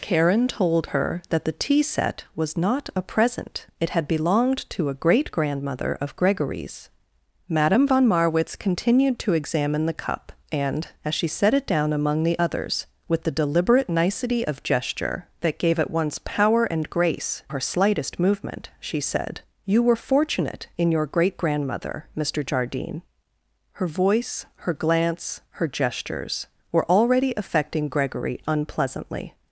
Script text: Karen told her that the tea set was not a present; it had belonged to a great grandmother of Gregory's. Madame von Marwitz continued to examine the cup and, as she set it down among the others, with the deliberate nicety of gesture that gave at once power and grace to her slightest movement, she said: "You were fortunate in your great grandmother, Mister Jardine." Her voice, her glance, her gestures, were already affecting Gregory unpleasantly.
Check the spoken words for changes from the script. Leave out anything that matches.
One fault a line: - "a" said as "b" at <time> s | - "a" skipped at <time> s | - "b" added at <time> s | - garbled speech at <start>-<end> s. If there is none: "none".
- "to" skipped at 17.4 s